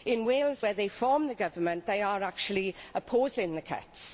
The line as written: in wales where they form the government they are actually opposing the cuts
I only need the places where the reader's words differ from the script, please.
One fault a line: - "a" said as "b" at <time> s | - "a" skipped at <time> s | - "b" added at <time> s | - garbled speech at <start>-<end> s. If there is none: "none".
none